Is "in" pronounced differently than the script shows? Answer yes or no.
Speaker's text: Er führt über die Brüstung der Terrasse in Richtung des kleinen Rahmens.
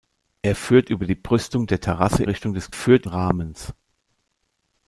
yes